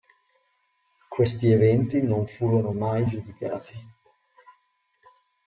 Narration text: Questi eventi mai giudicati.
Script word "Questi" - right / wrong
right